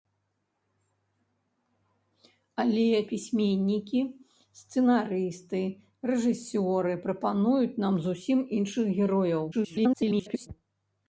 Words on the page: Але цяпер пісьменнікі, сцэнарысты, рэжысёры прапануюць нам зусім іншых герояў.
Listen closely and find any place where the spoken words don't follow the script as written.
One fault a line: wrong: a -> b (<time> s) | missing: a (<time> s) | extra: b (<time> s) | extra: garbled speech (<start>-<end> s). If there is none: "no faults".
missing: цяпер (2.9 s)
extra: garbled speech (9.5-10.5 s)